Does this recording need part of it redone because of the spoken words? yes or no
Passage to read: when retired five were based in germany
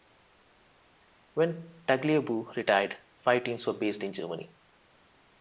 yes